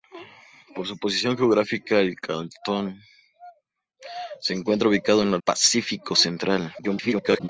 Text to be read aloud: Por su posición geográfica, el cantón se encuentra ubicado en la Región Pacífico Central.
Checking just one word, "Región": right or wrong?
wrong